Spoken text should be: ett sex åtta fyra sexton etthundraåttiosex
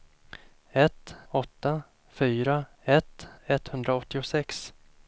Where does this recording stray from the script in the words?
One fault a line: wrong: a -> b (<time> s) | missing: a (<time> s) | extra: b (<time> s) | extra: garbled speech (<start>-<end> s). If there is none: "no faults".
missing: sex (1.1 s)
wrong: sexton -> ett (2.8 s)